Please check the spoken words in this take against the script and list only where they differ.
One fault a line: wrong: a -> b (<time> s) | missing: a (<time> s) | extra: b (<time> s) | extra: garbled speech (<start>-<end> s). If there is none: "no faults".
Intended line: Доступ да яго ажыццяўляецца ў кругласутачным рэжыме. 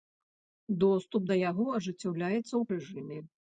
missing: кругласутачным (2.6 s)